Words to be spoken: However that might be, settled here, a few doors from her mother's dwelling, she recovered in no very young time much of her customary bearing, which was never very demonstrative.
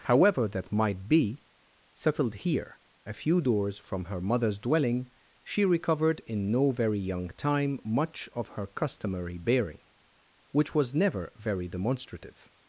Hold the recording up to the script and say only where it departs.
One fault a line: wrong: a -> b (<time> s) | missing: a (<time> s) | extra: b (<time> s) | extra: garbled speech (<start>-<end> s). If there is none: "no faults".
no faults